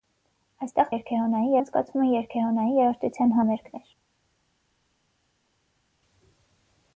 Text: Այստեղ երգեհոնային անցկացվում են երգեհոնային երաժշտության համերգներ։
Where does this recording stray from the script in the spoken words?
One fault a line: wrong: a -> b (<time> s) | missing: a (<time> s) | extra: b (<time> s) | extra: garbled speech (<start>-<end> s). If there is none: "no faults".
no faults